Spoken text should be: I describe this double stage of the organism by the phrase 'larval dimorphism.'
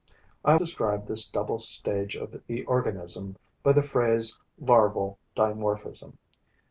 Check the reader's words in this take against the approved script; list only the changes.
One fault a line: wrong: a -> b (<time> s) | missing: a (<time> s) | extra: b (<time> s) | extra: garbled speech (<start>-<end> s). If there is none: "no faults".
no faults